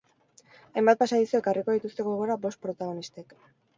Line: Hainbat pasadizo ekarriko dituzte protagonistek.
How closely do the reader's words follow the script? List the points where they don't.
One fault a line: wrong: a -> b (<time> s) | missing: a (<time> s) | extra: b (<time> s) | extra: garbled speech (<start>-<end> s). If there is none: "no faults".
extra: gogora bost (2.1 s)